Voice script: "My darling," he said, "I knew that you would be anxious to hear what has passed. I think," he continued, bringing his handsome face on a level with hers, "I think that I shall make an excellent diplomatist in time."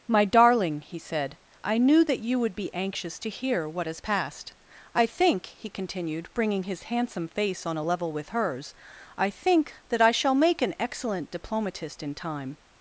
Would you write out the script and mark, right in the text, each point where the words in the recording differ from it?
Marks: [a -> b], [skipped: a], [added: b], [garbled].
"My darling," he said, "I knew that you would be anxious to hear what has passed. I think," he continued, bringing his handsome face on a level with hers, "I think that I shall make an excellent diplomatist in time."